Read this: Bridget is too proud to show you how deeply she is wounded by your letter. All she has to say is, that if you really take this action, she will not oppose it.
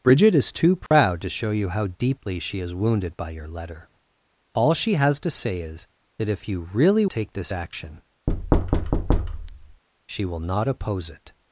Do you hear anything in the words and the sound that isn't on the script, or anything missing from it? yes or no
yes